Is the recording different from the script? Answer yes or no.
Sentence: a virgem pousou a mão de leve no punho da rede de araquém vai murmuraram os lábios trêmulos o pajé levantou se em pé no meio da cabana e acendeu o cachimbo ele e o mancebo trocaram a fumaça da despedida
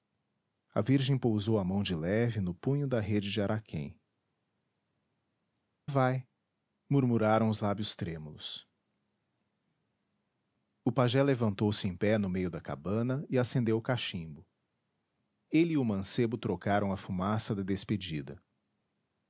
no